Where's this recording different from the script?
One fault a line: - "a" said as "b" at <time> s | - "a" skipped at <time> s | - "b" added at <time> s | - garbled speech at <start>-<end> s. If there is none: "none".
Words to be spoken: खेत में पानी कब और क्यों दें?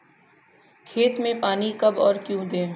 none